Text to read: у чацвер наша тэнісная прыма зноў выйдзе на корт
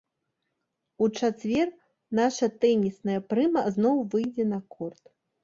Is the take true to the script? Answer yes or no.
yes